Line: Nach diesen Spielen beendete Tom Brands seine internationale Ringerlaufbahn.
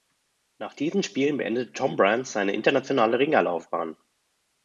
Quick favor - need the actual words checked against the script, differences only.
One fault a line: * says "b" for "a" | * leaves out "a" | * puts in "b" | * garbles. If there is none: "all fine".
all fine